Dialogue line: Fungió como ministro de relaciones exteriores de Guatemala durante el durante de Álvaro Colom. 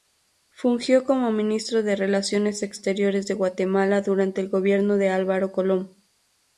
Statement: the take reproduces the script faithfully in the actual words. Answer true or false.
false